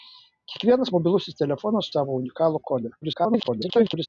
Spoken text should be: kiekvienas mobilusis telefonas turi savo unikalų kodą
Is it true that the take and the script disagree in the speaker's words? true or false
true